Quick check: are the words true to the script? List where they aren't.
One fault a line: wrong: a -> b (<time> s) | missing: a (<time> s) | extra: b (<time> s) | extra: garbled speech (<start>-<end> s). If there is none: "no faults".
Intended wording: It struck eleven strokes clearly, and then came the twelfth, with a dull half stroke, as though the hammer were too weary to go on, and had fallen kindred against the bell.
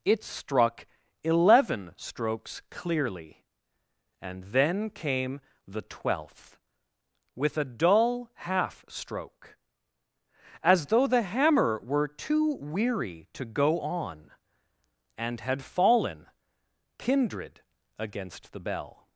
no faults